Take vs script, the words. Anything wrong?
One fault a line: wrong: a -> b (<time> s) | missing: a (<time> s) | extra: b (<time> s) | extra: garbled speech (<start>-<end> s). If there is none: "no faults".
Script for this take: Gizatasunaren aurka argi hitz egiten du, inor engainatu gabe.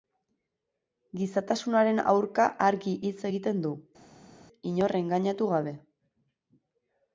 no faults